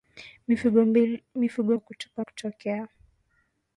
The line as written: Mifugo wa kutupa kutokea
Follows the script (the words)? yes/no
yes